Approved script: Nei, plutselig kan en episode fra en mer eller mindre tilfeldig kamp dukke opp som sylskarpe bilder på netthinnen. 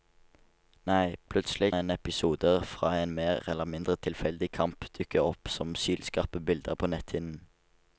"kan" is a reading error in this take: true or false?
true